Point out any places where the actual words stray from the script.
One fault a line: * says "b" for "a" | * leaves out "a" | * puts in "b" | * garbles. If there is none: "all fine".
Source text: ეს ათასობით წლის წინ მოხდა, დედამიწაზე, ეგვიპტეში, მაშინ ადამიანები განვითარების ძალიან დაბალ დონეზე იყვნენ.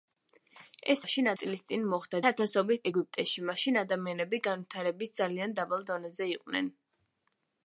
* says "მაშინ" for "ათასობით"
* says "ათასობით" for "დედამიწაზე"